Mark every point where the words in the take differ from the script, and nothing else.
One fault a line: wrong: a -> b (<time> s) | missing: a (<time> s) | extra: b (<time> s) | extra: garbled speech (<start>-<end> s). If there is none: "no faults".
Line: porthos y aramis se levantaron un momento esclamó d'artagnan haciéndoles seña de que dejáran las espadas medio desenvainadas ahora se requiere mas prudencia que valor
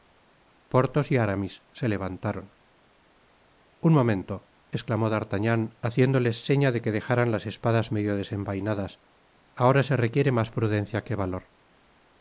no faults